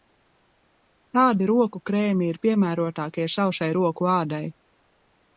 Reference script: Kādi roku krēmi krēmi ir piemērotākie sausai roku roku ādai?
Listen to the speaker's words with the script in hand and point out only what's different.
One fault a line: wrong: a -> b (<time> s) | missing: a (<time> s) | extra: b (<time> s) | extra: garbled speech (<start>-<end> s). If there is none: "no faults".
missing: krēmi (2.3 s)
missing: roku (4.1 s)